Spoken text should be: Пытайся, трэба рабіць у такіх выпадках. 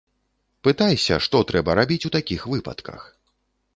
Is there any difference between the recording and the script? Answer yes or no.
yes